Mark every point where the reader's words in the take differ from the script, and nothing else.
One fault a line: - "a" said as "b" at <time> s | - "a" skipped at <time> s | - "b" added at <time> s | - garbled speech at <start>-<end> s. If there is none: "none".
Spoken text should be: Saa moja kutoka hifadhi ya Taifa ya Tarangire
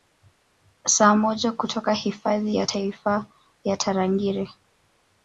none